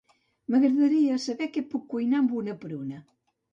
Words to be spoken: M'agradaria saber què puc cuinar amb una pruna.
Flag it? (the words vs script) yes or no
no